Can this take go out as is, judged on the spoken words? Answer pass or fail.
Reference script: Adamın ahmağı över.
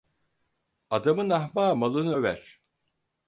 fail